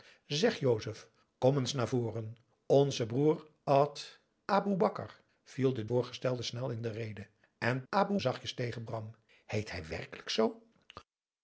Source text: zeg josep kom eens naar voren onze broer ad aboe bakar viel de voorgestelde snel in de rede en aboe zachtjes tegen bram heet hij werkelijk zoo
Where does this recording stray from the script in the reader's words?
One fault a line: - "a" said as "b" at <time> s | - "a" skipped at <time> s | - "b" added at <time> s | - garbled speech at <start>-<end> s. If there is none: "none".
none